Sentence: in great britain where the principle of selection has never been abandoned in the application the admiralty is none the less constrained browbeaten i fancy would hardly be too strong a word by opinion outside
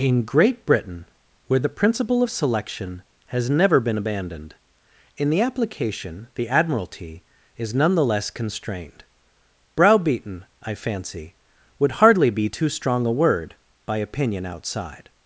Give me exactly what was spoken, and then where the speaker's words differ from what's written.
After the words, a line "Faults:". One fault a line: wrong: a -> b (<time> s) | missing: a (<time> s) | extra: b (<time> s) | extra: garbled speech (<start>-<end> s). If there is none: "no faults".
in great britain where the principle of selection has never been abandoned in the application the admiralty is none the less constrained browbeaten i fancy would hardly be too strong a word by opinion outside
Faults:
no faults